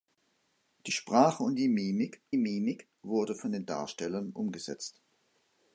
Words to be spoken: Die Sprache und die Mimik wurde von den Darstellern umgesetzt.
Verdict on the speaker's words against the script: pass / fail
fail